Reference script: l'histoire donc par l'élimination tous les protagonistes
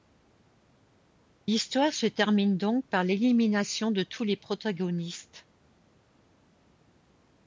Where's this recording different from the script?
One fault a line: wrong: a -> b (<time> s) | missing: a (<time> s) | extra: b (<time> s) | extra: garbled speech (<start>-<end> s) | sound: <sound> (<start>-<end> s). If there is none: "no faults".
extra: se termine (1.9 s)
extra: de (3.9 s)